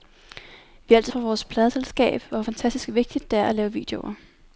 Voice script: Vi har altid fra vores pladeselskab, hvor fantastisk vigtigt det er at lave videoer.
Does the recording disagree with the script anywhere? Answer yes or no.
no